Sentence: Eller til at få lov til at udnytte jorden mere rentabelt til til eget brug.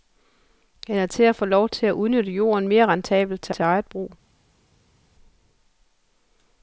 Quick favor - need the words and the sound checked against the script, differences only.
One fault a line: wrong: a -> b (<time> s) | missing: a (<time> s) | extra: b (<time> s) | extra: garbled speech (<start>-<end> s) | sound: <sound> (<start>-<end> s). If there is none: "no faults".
no faults